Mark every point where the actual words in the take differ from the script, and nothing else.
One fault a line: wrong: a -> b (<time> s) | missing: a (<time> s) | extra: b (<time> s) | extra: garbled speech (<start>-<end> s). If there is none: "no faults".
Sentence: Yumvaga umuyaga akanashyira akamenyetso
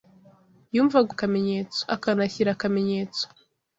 wrong: umuyaga -> akamenyetso (1.1 s)